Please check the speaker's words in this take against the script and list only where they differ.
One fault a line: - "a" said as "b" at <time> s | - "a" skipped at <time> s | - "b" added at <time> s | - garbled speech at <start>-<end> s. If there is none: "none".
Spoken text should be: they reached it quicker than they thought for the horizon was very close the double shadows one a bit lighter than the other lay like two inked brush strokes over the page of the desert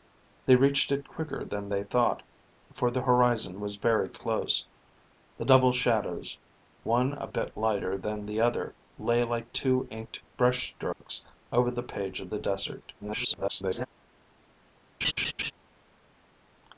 - garbled speech at 13.0-13.9 s